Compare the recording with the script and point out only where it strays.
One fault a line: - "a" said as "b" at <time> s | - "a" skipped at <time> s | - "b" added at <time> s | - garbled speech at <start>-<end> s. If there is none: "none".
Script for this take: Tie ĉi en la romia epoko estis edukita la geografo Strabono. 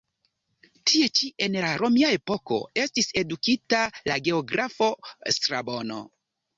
none